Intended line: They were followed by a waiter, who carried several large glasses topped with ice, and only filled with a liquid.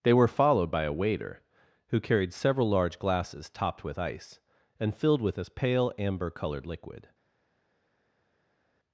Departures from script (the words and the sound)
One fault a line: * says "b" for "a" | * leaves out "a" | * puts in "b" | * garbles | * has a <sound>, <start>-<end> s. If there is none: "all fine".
* leaves out "only"
* puts in "pale amber coloured"